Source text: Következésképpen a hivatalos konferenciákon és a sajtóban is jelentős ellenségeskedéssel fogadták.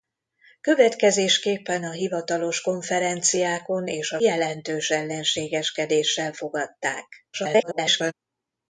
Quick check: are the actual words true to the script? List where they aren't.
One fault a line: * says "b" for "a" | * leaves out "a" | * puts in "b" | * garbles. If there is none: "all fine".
* leaves out "sajtóban is"
* garbles